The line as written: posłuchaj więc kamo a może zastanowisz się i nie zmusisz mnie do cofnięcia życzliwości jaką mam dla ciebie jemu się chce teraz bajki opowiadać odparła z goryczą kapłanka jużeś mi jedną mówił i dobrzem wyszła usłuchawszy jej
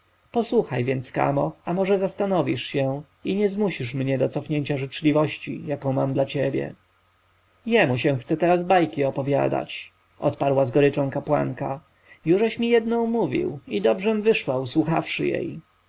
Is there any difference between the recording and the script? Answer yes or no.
no